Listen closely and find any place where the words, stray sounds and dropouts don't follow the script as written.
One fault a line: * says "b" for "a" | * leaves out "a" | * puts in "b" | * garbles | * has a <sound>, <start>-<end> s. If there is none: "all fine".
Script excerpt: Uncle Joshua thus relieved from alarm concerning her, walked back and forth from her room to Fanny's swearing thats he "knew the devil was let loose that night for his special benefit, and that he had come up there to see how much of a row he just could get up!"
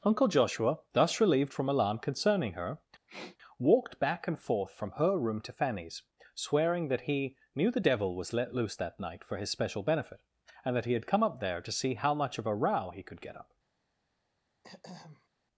* has a sniff, 3.1-3.4 s
* says "that" for "thats"
* leaves out "just"
* has a throat clearing, 14.6-15.3 s